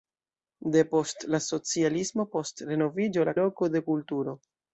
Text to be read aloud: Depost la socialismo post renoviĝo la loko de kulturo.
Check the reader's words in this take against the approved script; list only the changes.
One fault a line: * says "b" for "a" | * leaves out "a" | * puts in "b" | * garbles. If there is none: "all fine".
all fine